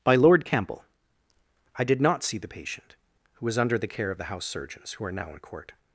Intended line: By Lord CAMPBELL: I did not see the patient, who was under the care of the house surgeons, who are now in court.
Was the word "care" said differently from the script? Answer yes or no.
no